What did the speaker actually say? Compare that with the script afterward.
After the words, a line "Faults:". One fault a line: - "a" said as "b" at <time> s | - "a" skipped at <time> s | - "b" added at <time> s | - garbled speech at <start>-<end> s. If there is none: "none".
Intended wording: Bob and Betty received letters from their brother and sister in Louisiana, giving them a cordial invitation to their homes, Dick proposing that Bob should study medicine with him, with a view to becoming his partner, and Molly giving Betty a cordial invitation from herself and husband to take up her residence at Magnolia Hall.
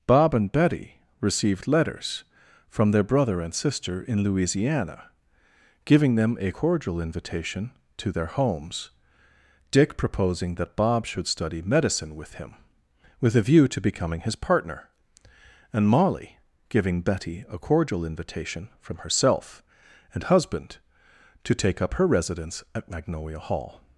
Bob and Betty received letters from their brother and sister in Louisiana, giving them a cordial invitation to their homes, Dick proposing that Bob should study medicine with him, with a view to becoming his partner, and Molly giving Betty a cordial invitation from herself and husband to take up her residence at Magnolia Hall.
Faults:
none